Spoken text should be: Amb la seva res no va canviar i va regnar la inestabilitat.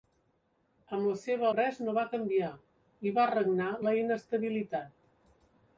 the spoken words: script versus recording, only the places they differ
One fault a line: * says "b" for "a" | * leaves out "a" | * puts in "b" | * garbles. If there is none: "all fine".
all fine